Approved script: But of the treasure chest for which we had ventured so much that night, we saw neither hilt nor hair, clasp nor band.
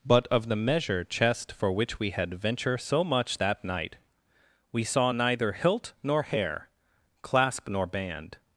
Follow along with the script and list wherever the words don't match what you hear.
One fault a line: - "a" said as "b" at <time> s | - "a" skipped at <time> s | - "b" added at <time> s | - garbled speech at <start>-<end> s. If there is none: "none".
- "treasure" said as "measure" at 0.6 s
- "ventured" said as "venture" at 2.3 s